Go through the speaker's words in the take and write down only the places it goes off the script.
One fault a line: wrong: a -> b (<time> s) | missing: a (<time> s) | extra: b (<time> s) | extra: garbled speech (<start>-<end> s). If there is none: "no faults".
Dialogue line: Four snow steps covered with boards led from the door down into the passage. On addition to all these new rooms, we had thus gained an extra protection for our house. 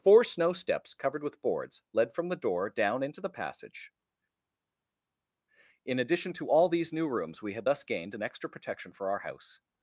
wrong: On -> In (5.8 s)